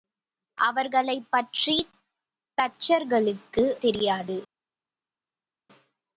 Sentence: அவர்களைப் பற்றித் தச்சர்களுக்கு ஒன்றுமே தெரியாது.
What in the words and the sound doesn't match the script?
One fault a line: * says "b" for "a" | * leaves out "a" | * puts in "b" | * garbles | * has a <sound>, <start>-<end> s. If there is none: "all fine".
* leaves out "ஒன்றுமே"